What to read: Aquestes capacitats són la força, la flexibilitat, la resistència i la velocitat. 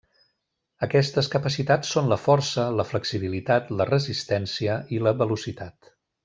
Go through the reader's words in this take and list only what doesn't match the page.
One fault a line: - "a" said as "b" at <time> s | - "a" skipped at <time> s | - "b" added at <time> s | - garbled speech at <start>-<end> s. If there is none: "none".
none